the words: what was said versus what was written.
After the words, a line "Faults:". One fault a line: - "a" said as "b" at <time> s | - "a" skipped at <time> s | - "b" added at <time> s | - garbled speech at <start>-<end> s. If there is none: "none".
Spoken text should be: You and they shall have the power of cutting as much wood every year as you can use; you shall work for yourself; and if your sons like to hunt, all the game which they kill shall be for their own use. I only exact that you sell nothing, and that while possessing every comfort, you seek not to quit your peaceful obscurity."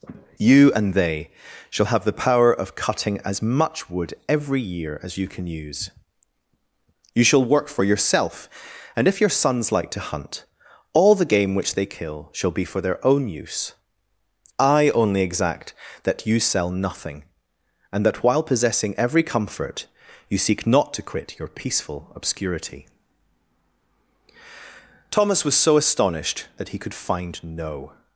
You and they shall have the power of cutting as much wood every year as you can use; you shall work for yourself; and if your sons like to hunt, all the game which they kill shall be for their own use. I only exact that you sell nothing, and that while possessing every comfort, you seek not to quit your peaceful obscurity." Thomas was so astonished that he could find no
Faults:
- "Thomas was so astonished that he could find no" added at 25.1 s